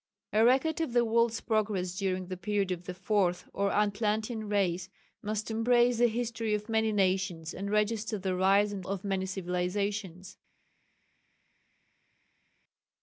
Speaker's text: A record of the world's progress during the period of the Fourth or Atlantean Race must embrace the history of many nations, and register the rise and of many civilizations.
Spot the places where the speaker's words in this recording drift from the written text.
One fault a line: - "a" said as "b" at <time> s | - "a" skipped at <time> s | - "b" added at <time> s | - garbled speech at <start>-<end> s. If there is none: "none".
none